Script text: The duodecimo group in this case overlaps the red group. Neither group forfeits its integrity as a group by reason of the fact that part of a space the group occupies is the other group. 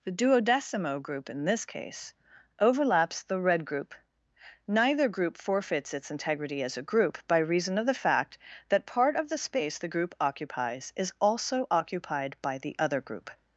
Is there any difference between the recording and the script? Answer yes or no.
yes